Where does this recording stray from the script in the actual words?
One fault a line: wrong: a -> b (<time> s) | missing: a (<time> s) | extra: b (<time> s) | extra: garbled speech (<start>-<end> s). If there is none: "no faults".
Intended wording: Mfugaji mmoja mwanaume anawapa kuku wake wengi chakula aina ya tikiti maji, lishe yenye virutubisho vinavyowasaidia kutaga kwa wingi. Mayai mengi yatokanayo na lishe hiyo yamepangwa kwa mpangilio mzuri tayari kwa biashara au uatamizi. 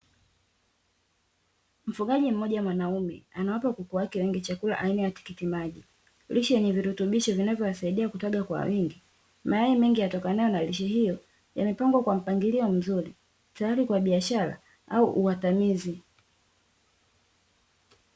no faults